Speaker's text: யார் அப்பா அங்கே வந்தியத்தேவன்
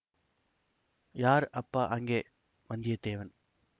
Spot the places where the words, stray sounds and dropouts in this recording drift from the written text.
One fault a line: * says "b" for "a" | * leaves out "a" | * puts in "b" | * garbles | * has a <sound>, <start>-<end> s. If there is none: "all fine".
all fine